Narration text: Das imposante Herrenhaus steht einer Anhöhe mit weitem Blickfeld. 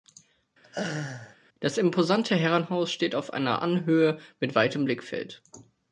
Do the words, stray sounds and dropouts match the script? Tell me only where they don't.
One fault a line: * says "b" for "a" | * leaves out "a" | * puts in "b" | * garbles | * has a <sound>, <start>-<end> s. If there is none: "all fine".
* has a laugh, 0.6-1.4 s
* puts in "auf"